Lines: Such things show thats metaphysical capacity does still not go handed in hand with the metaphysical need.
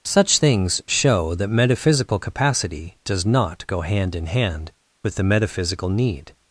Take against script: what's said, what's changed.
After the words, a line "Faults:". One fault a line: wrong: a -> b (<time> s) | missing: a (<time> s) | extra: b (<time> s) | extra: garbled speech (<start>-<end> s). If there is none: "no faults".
Such things show that metaphysical capacity does not go hand in hand with the metaphysical need.
Faults:
wrong: thats -> that (1.3 s)
missing: still (3.3 s)
wrong: handed -> hand (3.8 s)